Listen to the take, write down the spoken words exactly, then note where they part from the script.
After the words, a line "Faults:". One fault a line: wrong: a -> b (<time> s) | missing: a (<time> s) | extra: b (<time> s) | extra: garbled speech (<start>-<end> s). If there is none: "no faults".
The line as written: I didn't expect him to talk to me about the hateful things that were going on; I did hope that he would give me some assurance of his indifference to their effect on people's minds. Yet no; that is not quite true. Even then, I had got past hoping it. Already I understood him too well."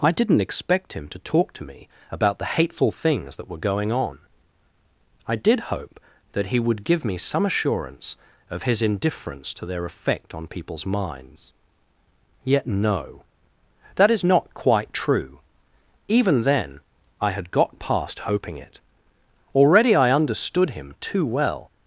I didn't expect him to talk to me about the hateful things that were going on; I did hope that he would give me some assurance of his indifference to their effect on people's minds. Yet no; that is not quite true. Even then, I had got past hoping it. Already I understood him too well."
Faults:
no faults